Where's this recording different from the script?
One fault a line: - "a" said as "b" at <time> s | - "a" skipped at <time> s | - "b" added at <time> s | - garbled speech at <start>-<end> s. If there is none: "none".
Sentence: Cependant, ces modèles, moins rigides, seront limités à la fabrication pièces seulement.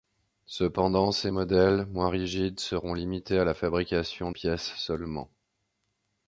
none